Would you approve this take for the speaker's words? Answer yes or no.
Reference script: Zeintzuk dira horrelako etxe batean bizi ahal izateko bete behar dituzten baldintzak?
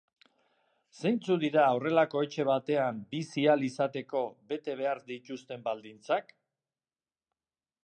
yes